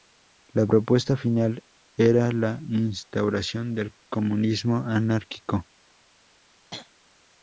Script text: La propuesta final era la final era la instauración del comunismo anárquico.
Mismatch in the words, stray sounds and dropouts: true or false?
true